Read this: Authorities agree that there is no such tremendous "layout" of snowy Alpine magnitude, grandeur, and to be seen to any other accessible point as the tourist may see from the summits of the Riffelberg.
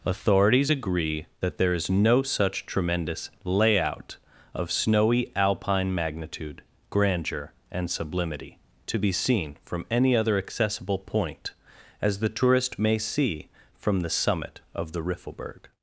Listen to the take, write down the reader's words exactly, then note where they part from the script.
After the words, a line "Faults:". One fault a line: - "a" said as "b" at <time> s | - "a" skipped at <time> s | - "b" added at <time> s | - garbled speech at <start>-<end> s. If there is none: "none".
Authorities agree that there is no such tremendous "layout" of snowy Alpine magnitude, grandeur, and sublimity to be seen from any other accessible point as the tourist may see from the summit of the Riffelberg.
Faults:
- "sublimity" added at 7.9 s
- "to" said as "from" at 9.6 s
- "summits" said as "summit" at 14.1 s